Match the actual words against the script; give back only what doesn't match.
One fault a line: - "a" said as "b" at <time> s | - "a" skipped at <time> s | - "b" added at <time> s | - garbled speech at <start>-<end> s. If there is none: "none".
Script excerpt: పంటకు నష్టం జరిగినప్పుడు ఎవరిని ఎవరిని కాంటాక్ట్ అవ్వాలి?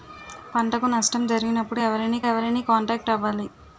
none